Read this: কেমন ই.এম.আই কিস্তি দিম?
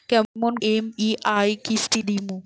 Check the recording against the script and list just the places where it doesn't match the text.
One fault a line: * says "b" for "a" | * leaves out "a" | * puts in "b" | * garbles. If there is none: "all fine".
all fine